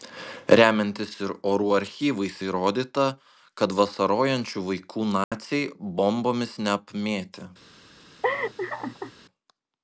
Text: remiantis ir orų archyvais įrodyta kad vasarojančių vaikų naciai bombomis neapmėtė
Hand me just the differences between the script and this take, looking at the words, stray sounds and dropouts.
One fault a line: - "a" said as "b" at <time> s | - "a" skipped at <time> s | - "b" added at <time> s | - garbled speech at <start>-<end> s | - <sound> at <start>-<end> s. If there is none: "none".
- dropout at 5.2-5.3 s
- laugh at 8.2-9.1 s